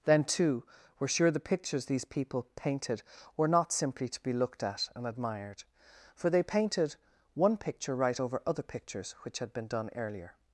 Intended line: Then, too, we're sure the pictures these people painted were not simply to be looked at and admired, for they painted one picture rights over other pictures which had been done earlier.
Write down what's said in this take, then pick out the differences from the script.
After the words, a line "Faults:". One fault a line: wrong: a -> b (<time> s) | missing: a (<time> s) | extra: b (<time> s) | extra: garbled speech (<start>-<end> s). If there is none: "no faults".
Then, too, we're sure the pictures these people painted were not simply to be looked at and admired, for they painted one picture right over other pictures which had been done earlier.
Faults:
wrong: rights -> right (8.0 s)